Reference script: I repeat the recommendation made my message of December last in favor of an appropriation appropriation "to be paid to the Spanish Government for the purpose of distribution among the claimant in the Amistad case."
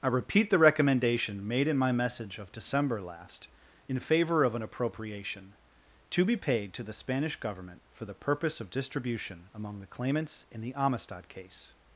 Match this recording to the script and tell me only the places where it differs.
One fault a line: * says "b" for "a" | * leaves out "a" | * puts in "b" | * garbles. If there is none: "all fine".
* puts in "in"
* leaves out "appropriation"
* says "claimants" for "claimant"